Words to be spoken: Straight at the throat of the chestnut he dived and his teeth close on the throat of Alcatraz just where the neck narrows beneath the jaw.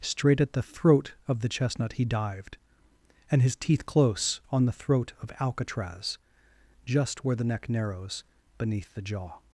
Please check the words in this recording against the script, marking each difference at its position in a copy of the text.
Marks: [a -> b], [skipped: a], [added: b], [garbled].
Straight at the throat of the chestnut he dived and his teeth close on the throat of Alcatraz just where the neck narrows beneath the jaw.